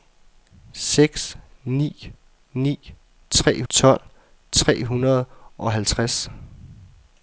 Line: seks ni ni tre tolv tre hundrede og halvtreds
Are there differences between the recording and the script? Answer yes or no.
no